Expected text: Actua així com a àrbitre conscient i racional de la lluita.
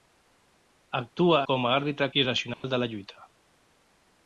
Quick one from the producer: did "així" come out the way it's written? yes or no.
no